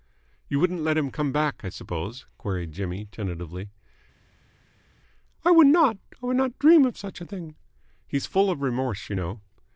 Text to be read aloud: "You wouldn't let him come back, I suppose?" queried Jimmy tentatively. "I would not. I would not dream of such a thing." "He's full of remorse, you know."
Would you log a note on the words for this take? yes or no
no